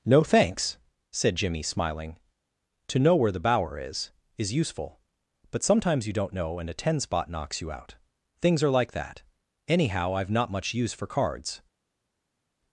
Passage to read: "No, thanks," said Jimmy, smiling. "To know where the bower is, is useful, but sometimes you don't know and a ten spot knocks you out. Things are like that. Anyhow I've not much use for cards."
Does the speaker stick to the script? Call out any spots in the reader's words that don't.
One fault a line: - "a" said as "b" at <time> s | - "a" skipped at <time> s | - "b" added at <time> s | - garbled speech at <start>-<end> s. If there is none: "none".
none